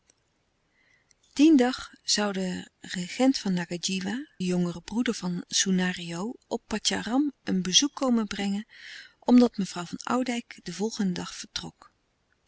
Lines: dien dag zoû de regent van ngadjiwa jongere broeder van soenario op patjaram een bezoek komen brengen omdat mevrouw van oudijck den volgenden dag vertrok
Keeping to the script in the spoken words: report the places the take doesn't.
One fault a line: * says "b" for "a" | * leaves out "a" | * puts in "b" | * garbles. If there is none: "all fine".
all fine